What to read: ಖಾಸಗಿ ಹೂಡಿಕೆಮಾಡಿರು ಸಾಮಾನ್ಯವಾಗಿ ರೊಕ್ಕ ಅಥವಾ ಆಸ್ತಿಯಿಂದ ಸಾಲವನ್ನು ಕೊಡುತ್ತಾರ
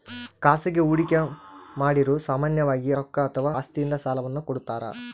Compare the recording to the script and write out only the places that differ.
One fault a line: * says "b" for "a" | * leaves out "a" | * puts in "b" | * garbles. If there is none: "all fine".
all fine